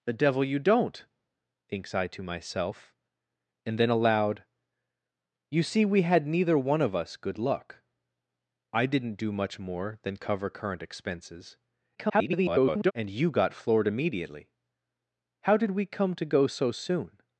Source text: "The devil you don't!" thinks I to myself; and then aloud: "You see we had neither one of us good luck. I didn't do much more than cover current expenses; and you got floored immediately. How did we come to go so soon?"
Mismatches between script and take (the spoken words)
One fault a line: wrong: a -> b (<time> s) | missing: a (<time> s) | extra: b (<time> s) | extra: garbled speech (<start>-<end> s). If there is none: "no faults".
extra: garbled speech (12.0-12.9 s)